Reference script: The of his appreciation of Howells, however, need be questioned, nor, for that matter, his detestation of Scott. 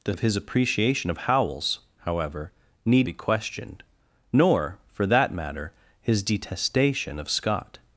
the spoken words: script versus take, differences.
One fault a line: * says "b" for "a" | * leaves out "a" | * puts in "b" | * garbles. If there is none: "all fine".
all fine